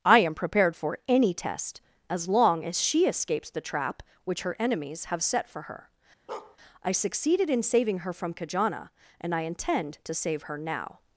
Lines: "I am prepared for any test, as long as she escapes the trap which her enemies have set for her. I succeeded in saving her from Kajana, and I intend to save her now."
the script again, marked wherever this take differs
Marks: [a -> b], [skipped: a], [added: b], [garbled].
"I am prepared for any test, as long as she escapes the trap which her enemies have set for her. I succeeded in saving her from Kajana, and I intend to save her now."